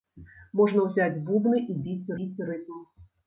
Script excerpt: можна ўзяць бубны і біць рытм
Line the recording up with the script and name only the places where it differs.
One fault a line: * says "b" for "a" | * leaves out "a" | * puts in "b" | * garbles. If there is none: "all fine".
* puts in "біць"